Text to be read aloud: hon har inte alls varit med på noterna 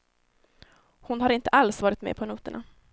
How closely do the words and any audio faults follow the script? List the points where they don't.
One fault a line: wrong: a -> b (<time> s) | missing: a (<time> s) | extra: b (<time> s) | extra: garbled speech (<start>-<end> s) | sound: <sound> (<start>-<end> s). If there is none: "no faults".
no faults